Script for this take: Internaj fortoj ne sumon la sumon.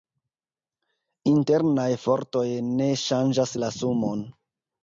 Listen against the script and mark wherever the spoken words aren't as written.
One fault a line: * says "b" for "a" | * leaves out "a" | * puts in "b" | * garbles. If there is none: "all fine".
* says "ŝanĝas" for "sumon"